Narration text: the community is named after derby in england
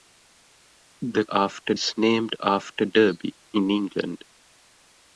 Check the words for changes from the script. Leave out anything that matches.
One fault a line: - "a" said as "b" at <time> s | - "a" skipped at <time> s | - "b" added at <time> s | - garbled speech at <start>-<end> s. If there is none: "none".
- "community" said as "after" at 1.3 s